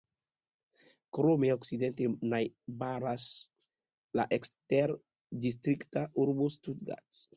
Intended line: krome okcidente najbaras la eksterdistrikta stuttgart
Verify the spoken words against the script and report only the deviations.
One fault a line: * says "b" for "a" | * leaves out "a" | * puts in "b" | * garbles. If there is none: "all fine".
* puts in "urbo"